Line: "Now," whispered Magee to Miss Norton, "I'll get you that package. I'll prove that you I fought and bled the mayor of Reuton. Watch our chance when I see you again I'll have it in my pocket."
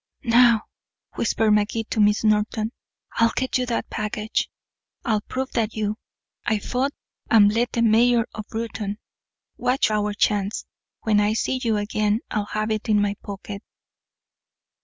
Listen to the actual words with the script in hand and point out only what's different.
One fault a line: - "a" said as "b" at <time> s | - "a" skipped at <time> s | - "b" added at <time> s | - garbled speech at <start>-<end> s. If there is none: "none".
none